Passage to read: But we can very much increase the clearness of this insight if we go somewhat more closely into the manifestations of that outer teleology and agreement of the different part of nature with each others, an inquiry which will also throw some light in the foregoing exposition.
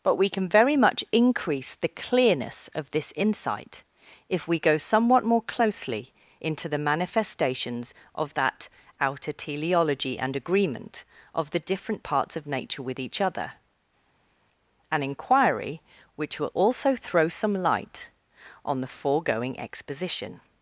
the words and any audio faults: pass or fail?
fail